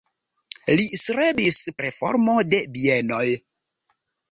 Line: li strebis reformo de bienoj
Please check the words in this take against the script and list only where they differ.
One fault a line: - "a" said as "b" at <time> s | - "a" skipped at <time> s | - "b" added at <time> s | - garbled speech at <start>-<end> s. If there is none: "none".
none